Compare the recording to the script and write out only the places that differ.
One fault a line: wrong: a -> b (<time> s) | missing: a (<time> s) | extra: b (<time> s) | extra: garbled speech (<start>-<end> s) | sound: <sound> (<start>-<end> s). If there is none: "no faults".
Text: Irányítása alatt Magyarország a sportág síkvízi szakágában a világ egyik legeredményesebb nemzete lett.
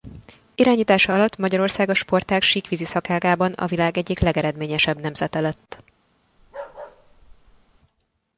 sound: bark (6.4-7.8 s)